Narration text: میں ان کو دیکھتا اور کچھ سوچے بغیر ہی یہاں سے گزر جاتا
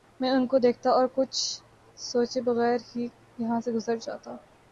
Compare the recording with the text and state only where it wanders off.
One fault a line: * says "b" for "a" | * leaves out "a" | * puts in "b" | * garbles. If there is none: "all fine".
all fine